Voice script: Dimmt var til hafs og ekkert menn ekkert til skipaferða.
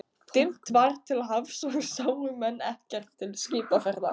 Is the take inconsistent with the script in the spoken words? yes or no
yes